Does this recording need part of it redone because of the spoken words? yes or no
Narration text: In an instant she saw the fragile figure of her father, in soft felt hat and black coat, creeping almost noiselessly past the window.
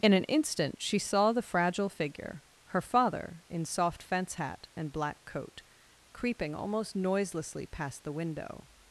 yes